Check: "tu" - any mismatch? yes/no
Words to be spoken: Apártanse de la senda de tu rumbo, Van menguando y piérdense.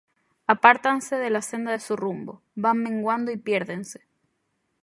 yes